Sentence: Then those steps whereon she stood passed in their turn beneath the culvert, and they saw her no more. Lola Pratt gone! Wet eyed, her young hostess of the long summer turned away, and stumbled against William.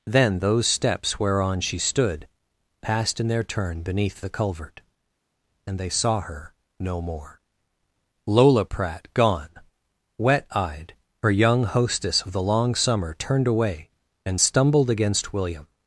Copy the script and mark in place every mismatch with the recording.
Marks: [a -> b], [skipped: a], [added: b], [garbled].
Then those steps whereon she stood passed in their turn beneath the culvert, and they saw her no more. Lola Pratt gone! Wet eyed, her young hostess of the long summer turned away, and stumbled against William.